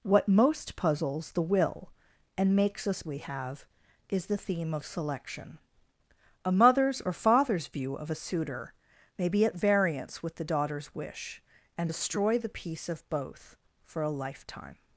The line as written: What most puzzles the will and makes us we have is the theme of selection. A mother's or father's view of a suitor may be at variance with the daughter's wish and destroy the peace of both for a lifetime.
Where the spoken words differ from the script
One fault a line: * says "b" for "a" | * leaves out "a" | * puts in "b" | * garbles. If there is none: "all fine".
all fine